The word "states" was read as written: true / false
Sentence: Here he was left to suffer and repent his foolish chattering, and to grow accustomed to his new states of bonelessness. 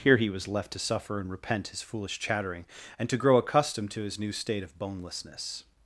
false